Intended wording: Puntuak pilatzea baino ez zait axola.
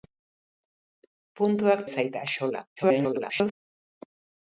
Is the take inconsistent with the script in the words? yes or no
yes